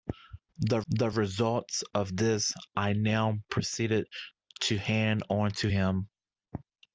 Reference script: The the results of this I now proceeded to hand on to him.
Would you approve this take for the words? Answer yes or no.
yes